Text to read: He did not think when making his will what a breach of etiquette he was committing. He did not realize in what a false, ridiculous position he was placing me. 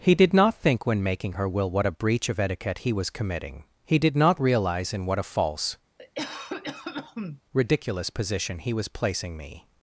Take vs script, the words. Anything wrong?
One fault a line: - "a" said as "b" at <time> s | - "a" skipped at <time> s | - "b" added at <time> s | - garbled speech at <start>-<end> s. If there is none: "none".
- "his" said as "her" at 1.3 s